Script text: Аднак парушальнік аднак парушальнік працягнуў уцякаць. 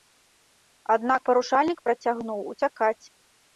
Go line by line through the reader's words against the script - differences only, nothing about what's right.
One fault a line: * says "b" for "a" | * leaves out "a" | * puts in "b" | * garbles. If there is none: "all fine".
* leaves out "аднак парушальнік"